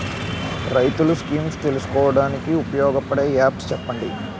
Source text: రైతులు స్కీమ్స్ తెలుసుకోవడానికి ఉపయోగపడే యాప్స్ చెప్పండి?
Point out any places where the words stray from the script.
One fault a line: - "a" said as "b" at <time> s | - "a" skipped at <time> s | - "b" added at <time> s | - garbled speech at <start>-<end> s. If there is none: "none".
none